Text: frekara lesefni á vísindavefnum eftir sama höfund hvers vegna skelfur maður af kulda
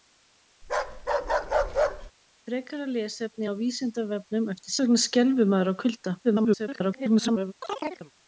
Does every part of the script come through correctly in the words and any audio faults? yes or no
no